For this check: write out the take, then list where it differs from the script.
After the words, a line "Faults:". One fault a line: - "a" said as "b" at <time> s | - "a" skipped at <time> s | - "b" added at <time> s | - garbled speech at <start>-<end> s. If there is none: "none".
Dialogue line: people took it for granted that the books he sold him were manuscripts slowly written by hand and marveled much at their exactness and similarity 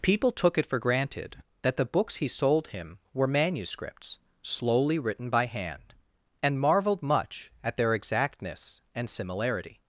people took it for granted that the books he sold him were manuscripts slowly written by hand and marveled much at their exactness and similarity
Faults:
none